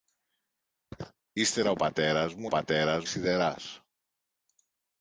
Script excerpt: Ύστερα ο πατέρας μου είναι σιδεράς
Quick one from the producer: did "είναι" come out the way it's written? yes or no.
no